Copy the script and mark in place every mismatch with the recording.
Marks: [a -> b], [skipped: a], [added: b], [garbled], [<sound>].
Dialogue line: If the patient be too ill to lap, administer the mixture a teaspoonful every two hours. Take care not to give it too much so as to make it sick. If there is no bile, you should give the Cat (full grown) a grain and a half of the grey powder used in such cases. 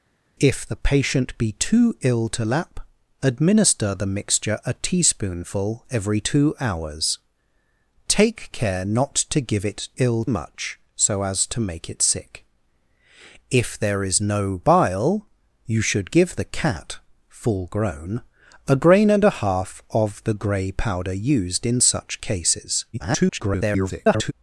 If the patient be too ill to lap, administer the mixture a teaspoonful every two hours. Take care not to give it [too -> ill] much so as to make it sick. If there is no bile, you should give the Cat (full grown) a grain and a half of the grey powder used in such cases. [garbled]